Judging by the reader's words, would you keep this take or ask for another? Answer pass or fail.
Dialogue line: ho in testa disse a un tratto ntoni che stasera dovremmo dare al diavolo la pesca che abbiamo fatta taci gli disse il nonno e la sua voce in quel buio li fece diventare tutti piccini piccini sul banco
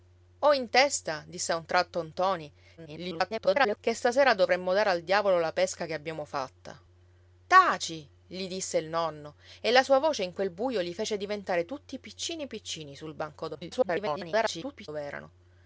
fail